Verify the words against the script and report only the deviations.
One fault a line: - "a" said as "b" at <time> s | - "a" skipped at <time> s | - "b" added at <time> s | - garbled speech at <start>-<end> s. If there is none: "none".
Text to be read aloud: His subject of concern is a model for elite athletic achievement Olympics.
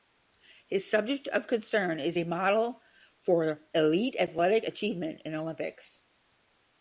- "in" added at 5.2 s